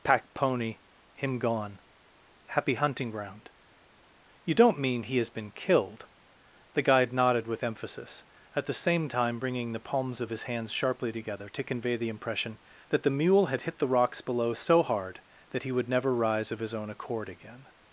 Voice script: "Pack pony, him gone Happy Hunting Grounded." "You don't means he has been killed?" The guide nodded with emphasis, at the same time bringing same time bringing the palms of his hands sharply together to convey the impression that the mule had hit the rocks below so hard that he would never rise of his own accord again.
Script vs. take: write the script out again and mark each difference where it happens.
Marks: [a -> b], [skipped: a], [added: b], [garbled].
"Pack pony, him gone Happy Hunting [Grounded." -> Ground] "You don't [means -> mean] he has been killed?" The guide nodded with emphasis, at the same time bringing [skipped: same time bringing] the palms of his hands sharply together to convey the impression that the mule had hit the rocks below so hard that he would never rise of his own accord again.